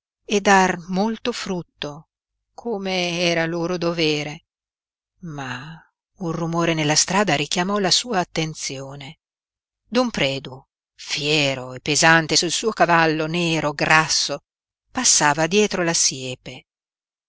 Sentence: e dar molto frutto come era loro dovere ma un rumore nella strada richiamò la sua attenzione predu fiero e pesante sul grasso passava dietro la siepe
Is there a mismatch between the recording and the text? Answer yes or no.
yes